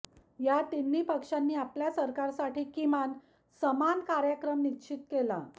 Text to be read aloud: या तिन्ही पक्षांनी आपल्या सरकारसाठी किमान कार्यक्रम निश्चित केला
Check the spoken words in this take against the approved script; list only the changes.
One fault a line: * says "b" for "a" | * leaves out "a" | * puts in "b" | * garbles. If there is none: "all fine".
* puts in "समान"